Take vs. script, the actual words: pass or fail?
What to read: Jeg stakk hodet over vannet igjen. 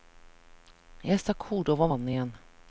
pass